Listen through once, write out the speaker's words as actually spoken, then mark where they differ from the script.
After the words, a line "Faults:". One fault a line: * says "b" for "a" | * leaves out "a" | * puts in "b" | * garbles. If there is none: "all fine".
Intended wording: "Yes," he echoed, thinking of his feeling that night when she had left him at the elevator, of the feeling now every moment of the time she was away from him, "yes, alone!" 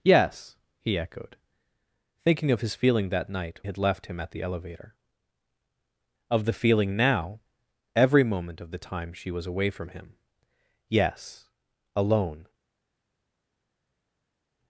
"Yes," he echoed, thinking of his feeling that night had left him at the elevator, of the feeling now every moment of the time she was away from him, "yes, alone!"
Faults:
* leaves out "when she"